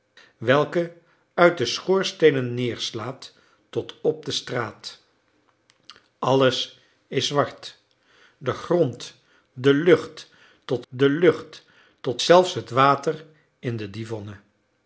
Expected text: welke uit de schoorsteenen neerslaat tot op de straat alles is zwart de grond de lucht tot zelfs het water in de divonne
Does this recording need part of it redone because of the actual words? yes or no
yes